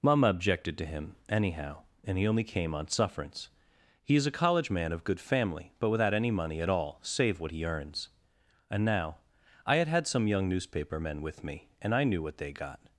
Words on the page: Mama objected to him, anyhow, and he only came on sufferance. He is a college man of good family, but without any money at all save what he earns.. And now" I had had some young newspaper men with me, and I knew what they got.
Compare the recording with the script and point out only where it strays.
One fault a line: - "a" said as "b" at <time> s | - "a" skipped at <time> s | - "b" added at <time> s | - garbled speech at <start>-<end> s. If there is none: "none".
none